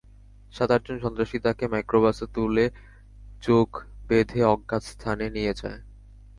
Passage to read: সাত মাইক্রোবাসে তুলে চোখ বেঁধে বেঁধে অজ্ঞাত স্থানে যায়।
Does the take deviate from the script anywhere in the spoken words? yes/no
yes